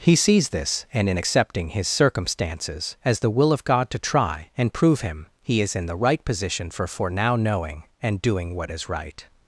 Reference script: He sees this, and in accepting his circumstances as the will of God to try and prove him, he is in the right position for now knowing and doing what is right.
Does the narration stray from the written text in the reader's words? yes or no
yes